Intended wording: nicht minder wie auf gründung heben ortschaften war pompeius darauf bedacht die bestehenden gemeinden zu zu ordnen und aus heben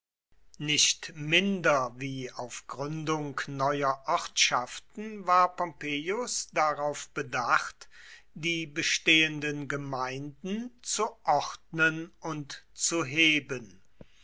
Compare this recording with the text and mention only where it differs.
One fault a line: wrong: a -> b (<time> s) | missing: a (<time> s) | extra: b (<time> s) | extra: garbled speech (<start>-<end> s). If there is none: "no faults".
wrong: heben -> neuer (3.5 s)
missing: zu (11.1 s)
wrong: aus -> zu (12.7 s)